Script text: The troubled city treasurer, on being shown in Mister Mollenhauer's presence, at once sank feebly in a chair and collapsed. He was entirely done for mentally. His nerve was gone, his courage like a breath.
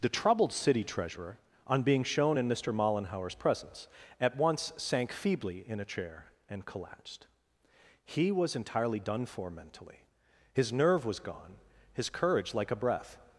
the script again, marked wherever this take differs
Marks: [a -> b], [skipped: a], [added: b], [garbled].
The troubled city treasurer, on being shown in Mister Mollenhauer's presence, at once sank feebly in a chair and collapsed. He was entirely done for mentally. His nerve was gone, his courage like a breath.